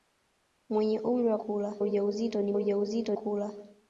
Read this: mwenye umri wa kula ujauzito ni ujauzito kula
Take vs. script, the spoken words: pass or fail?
pass